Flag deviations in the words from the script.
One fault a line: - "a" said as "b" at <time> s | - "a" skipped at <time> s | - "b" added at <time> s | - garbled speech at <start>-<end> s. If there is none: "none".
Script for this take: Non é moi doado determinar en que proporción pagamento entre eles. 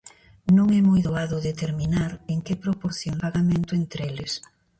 none